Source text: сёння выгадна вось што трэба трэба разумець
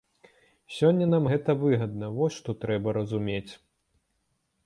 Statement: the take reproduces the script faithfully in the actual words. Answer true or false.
false